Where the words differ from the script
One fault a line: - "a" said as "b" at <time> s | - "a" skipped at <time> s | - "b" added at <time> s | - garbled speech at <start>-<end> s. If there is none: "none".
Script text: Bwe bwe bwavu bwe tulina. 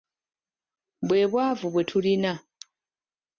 - "bwe" skipped at 1.2 s